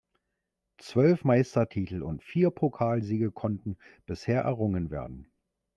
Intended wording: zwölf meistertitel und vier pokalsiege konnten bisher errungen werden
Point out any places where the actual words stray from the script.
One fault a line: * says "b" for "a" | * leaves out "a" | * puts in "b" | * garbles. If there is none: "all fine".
all fine